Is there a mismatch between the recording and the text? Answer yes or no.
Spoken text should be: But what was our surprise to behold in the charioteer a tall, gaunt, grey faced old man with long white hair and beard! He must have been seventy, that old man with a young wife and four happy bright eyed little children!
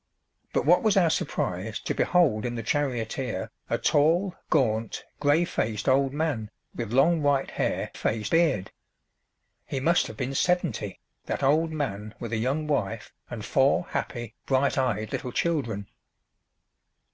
yes